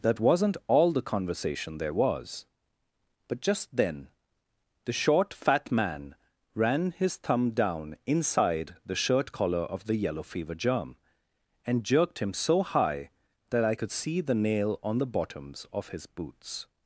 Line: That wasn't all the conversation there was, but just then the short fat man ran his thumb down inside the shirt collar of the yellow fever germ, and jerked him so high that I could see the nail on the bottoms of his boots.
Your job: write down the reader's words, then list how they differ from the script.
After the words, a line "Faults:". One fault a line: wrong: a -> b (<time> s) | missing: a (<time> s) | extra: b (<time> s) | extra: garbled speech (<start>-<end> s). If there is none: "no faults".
That wasn't all the conversation there was, but just then the short fat man ran his thumb down inside the shirt collar of the yellow fever germ, and jerked him so high that I could see the nail on the bottoms of his boots.
Faults:
no faults